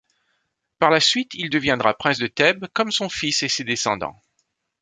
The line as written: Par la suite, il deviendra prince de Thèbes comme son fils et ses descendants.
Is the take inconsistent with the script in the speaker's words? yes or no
no